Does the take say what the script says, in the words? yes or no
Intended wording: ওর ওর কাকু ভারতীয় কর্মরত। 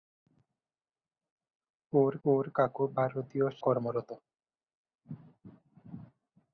yes